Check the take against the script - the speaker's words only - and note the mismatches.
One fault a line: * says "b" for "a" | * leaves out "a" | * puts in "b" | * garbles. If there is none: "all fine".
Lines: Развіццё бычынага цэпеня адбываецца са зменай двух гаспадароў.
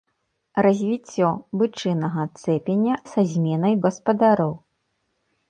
* leaves out "адбываецца"
* leaves out "двух"